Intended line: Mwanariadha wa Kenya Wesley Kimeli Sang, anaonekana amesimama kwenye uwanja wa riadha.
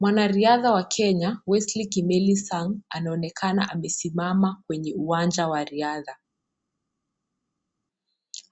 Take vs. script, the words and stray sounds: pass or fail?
pass